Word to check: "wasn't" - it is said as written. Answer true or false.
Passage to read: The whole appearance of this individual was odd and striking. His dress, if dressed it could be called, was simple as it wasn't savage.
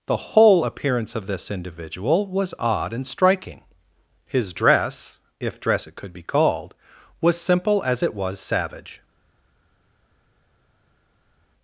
false